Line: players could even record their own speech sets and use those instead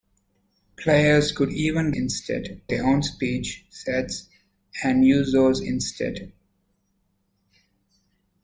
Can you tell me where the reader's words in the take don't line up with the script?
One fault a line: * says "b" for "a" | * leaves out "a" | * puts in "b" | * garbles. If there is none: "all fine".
* says "instead" for "record"